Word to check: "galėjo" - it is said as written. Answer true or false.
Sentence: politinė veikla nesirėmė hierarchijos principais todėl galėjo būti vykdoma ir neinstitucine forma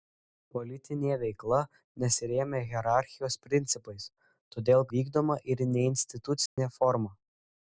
false